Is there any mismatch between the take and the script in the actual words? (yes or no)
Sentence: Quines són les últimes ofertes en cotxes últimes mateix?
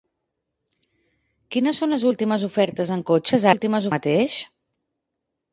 no